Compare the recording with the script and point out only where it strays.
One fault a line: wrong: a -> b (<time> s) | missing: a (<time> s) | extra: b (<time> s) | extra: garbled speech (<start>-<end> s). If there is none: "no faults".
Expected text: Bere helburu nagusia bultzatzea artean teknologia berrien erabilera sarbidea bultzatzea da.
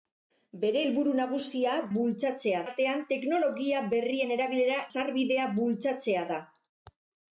no faults